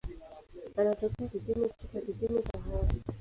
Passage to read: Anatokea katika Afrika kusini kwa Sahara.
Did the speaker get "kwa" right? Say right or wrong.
wrong